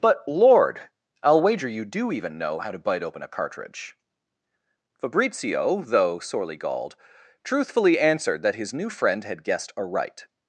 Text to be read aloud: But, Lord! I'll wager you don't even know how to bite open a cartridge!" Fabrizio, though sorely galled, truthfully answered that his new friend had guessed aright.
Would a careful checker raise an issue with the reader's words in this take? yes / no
yes